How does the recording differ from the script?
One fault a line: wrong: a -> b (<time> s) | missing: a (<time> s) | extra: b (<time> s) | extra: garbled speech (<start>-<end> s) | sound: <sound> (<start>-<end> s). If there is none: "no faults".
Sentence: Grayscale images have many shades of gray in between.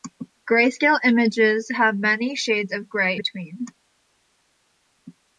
missing: in (3.2 s)